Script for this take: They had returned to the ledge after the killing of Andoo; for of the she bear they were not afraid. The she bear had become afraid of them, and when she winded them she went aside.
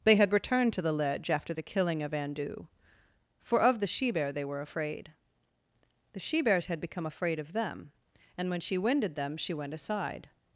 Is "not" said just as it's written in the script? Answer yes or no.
no